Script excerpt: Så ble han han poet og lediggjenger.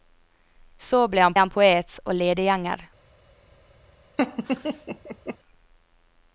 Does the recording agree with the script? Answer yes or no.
yes